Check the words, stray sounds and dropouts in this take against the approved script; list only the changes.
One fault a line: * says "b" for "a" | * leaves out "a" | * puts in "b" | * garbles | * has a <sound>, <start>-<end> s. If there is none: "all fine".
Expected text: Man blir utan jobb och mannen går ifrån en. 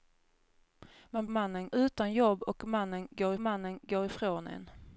* says "mannen" for "blir"
* puts in "mannen går"